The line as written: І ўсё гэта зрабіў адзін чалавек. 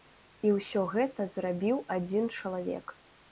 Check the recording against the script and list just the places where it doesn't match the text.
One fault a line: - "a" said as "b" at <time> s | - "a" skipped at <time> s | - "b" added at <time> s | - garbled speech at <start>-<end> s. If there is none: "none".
none